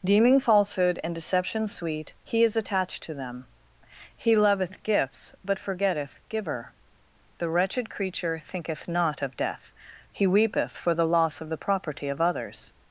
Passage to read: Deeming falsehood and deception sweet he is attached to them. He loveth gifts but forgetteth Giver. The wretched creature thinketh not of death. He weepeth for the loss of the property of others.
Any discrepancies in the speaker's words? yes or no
no